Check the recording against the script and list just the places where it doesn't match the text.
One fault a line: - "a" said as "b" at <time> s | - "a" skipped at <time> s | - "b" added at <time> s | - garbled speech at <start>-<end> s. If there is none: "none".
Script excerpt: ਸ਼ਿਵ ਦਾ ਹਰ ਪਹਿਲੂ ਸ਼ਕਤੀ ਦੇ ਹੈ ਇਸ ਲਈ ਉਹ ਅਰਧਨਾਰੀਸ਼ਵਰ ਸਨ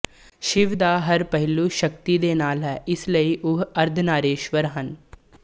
- "ਨਾਲ" added at 2.3 s
- "ਸਨ" said as "ਹਨ" at 4.8 s